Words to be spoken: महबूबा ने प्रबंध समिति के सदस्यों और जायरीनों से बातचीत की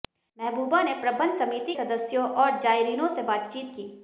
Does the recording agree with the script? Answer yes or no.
no